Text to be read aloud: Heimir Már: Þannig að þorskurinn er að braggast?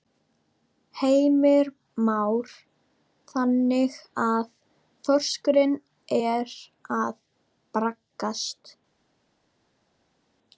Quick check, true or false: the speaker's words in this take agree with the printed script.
true